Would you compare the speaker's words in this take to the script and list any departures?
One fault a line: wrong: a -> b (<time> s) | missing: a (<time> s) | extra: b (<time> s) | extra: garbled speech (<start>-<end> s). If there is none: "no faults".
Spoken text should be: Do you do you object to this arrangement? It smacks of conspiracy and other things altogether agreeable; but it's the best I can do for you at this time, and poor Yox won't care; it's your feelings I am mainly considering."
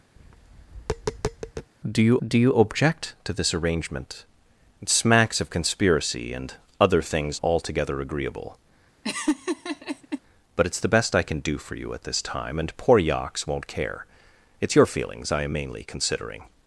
no faults